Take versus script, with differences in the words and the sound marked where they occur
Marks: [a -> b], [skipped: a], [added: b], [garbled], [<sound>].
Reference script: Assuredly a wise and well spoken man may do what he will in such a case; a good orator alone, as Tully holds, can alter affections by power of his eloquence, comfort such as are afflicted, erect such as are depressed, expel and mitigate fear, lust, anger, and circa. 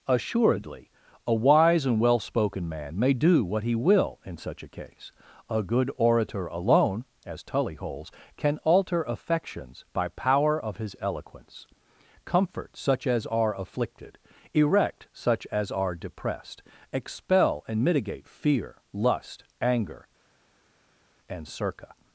Assuredly a wise and well spoken man may do what he will in such a case; a good orator alone, as Tully holds, can alter affections by power of his eloquence, comfort such as are afflicted, erect such as are depressed, expel and mitigate fear, lust, anger, and circa.